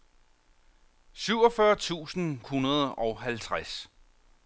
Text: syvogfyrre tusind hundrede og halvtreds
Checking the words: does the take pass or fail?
pass